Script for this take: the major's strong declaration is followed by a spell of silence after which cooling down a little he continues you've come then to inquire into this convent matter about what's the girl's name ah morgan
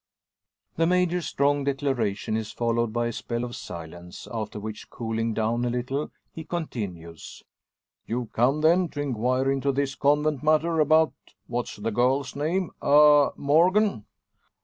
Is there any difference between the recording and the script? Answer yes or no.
no